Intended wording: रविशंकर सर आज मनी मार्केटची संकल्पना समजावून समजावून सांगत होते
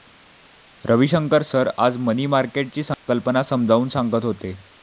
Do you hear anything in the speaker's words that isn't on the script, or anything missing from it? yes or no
yes